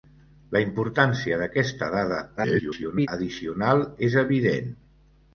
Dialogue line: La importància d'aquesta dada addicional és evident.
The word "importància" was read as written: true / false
true